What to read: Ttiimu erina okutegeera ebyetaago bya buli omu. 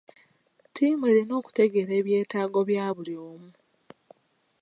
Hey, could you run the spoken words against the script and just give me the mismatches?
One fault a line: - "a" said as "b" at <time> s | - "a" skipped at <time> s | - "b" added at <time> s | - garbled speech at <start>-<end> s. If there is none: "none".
none